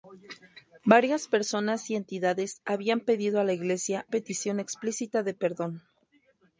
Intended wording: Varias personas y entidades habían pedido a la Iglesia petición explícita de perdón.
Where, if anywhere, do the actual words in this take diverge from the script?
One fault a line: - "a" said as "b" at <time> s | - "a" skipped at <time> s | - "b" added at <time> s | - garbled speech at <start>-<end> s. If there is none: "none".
none